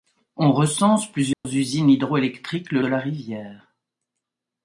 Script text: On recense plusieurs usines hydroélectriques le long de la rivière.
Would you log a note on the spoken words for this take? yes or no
yes